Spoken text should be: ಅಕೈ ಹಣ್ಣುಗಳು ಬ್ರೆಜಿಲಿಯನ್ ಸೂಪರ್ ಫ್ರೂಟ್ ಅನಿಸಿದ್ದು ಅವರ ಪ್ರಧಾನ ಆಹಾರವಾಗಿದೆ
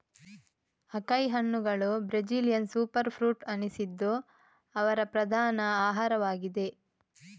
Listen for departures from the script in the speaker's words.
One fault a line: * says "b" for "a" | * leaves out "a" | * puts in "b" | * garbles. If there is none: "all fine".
all fine